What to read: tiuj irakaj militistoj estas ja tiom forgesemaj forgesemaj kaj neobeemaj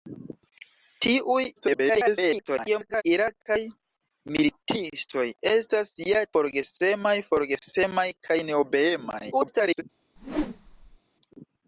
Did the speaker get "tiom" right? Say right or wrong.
wrong